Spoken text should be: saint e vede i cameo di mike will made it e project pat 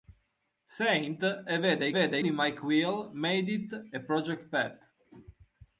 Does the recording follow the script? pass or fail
fail